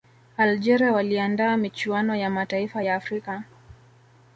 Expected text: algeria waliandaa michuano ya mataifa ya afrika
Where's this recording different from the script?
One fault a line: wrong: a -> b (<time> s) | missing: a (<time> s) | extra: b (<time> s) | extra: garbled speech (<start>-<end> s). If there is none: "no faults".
no faults